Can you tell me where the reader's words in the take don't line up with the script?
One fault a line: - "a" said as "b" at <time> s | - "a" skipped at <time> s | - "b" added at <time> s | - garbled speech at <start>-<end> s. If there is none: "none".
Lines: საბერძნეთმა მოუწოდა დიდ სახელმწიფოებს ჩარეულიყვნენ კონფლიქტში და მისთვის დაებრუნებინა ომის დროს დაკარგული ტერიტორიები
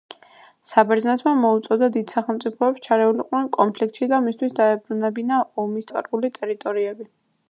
- "დროს" skipped at 5.9 s